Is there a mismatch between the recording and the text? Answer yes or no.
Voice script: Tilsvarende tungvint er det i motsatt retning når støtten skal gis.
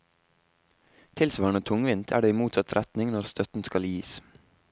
no